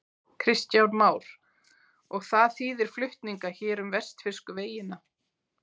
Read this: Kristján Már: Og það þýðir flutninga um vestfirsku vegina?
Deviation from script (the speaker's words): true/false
true